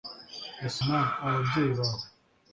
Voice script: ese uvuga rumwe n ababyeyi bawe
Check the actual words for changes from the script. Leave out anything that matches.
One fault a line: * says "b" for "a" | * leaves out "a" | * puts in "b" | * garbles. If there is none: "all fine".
* leaves out "uvuga rumwe"